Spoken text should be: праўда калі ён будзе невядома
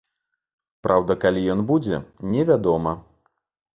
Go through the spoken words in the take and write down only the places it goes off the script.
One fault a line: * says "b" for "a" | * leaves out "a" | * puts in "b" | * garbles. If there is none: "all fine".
all fine